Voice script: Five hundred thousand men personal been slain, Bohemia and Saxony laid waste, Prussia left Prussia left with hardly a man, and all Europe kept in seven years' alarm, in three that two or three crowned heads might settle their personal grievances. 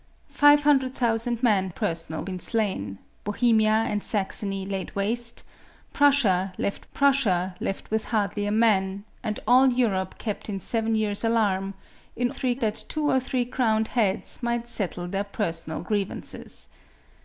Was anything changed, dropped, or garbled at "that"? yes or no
no